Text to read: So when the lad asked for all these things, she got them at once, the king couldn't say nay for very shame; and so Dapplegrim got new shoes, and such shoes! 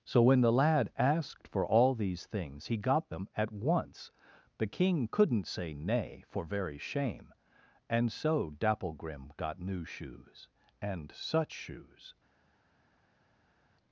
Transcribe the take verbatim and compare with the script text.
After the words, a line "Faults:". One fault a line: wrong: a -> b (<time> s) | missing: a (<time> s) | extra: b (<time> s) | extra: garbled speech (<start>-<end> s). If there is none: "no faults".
So when the lad asked for all these things, he got them at once, the king couldn't say nay for very shame; and so Dapplegrim got new shoes, and such shoes!
Faults:
wrong: she -> he (2.7 s)